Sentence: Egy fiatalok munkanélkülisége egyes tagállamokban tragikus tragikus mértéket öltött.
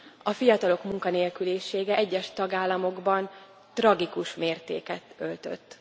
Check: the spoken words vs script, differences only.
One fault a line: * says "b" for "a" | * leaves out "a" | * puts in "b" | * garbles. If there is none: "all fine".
* says "A" for "Egy"
* leaves out "tragikus"